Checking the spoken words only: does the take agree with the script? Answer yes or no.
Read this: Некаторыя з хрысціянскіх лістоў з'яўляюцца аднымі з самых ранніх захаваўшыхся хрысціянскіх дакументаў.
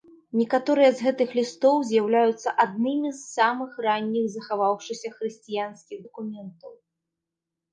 no